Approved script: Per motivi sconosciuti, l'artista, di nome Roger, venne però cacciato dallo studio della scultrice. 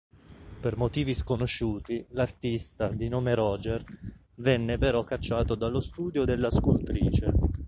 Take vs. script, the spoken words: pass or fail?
pass